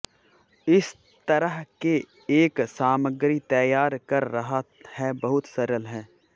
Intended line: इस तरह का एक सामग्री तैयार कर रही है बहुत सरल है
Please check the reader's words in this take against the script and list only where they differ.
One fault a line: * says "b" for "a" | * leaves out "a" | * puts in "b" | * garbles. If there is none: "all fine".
* says "के" for "का"
* says "रहा" for "रही"